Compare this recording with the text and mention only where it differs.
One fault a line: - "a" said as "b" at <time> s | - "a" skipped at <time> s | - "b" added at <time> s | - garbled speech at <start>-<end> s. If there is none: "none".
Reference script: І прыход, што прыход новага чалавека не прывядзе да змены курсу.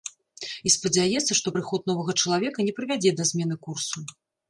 - "прыход" said as "спадзяецца" at 0.8 s